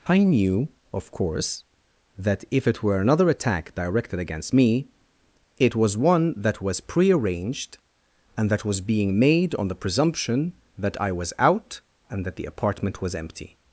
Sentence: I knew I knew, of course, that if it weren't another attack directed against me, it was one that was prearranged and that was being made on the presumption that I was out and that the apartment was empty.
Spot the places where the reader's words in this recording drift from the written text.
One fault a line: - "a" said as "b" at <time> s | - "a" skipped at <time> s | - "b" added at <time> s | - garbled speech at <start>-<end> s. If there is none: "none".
- "I knew" skipped at 0.7 s
- "weren't" said as "were" at 2.8 s